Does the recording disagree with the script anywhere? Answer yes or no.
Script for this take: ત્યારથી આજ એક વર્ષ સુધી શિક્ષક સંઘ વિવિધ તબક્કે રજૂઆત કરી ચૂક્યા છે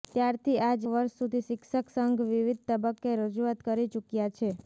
yes